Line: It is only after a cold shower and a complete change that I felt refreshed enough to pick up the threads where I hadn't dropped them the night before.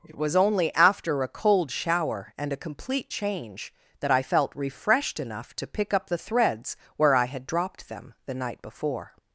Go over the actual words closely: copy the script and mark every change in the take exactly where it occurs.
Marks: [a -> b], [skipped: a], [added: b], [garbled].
It [is -> was] only after a cold shower and a complete change that I felt refreshed enough to pick up the threads where I [hadn't -> had] dropped them the night before.